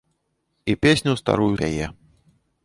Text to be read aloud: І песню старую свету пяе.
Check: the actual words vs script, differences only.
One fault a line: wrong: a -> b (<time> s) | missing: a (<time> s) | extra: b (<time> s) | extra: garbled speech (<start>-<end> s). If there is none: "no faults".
missing: свету (1.6 s)